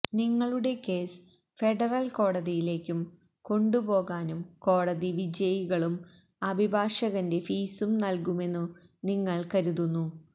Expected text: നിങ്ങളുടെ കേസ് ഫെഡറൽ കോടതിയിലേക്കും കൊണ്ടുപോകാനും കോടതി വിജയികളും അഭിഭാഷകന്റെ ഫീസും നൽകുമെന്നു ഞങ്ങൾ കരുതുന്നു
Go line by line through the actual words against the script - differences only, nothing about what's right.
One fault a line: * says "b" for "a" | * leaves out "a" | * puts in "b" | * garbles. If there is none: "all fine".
* says "നിങ്ങൾ" for "ഞങ്ങൾ"